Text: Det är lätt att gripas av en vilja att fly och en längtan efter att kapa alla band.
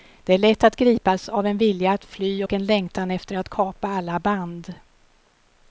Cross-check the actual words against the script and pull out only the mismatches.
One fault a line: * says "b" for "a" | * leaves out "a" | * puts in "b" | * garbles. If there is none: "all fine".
all fine